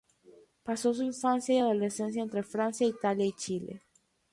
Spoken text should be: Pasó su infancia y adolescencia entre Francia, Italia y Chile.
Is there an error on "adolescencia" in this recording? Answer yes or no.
no